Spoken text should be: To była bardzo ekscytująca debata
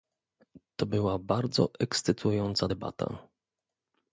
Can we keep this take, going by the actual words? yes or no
yes